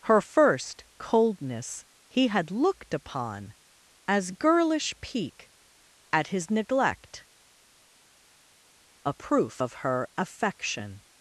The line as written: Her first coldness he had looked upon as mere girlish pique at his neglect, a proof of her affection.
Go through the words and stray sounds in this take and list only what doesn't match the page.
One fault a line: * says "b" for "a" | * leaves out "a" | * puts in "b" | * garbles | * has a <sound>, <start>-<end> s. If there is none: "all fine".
* leaves out "mere"